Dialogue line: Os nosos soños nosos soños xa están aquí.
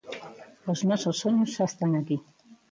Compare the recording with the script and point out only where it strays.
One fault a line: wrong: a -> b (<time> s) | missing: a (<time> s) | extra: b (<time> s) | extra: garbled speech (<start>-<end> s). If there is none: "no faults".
missing: nosos soños (1.5 s)